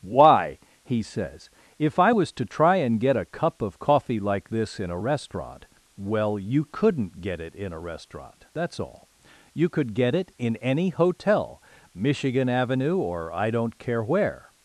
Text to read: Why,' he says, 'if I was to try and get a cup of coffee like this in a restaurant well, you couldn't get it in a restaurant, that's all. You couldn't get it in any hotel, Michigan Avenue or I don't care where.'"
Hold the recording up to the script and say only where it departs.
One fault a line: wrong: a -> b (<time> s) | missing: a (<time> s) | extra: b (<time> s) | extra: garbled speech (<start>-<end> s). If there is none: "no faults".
wrong: couldn't -> could (9.7 s)